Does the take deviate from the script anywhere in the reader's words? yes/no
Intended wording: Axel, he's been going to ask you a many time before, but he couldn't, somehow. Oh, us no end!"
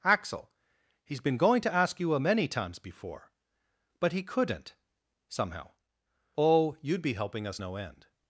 yes